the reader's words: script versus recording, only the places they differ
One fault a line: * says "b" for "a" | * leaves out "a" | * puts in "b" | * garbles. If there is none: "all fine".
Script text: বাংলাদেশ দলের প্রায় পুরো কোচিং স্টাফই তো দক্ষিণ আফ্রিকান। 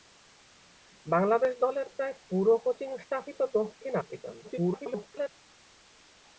* garbles